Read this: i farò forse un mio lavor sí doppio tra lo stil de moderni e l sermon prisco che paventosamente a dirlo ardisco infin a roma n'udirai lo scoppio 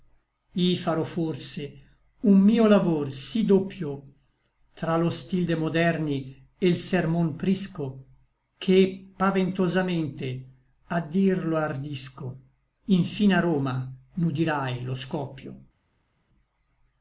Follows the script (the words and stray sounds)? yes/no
yes